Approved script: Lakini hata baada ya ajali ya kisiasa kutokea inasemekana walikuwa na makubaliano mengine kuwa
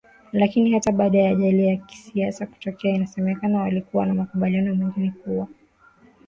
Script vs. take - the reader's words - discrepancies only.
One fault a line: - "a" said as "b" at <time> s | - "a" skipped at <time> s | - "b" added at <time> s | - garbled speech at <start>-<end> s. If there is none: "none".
none